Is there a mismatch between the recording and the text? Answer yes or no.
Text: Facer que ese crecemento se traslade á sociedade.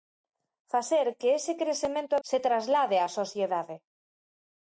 no